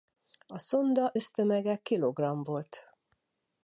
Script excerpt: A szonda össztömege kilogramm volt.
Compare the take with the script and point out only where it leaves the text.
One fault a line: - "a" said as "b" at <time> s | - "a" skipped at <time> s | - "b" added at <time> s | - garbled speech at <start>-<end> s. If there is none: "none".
none